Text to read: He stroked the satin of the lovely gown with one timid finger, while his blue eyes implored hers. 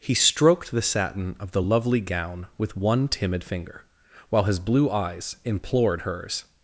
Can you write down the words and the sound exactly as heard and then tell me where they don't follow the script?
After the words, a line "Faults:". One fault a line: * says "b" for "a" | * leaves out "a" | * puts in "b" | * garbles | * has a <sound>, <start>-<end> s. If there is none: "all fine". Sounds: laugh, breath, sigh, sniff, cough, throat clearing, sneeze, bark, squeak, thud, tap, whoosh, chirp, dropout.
He stroked the satin of the lovely gown with one timid finger, while his blue eyes implored hers.
Faults:
all fine